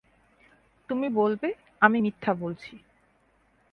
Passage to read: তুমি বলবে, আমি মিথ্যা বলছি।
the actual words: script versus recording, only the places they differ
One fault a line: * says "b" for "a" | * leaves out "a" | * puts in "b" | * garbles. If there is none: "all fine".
all fine